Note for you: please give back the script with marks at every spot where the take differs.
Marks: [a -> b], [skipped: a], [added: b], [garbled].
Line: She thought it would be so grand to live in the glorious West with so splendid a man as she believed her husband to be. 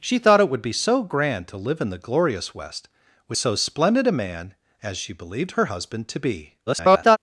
She thought it would be so grand to live in the glorious West with so splendid a man as she believed her husband to be. [garbled]